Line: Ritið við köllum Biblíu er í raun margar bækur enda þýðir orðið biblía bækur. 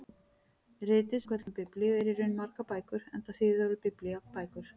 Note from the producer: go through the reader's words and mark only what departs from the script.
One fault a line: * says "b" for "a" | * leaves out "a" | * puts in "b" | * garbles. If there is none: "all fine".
all fine